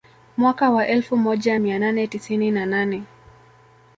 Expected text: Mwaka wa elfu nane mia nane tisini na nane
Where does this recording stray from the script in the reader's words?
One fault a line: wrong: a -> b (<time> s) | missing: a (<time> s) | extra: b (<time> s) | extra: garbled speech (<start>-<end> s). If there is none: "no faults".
wrong: nane -> moja (1.2 s)